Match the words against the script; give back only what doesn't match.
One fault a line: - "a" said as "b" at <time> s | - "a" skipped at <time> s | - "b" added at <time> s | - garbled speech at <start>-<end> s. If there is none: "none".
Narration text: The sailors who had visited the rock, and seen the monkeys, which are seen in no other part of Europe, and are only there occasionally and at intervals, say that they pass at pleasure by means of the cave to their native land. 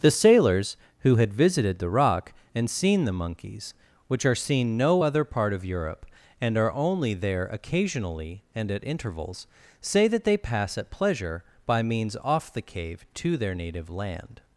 - "in" skipped at 4.8 s
- "of" said as "off" at 12.2 s